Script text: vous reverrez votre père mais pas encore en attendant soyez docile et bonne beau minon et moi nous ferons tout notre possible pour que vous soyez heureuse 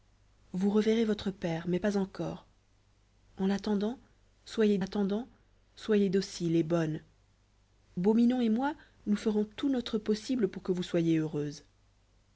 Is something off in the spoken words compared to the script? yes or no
yes